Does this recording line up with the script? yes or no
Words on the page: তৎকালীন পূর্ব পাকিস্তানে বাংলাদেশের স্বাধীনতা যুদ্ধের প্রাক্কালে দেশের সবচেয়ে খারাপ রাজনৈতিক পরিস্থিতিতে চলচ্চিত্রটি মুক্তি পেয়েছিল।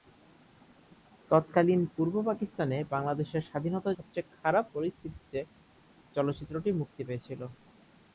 no